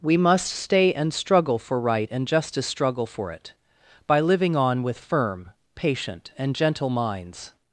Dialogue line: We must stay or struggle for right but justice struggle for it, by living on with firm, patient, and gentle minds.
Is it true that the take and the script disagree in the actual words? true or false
true